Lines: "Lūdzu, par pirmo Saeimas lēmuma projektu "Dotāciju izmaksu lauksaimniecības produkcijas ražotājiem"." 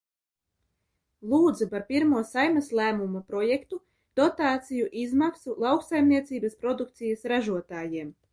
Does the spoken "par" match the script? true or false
true